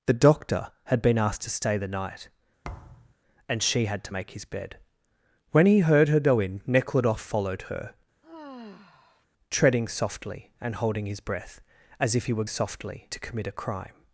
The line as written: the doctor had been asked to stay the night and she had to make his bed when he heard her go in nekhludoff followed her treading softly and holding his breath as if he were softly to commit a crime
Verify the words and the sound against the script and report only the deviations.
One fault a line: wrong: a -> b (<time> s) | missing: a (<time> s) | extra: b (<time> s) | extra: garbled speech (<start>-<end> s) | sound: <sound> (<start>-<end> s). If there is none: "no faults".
sound: thud (2.6-3.1 s)
sound: sigh (8.2-9.3 s)